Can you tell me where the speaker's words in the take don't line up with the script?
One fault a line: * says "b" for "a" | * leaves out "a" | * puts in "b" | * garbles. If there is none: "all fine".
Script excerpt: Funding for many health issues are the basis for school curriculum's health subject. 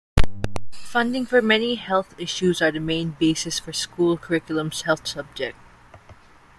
* puts in "main"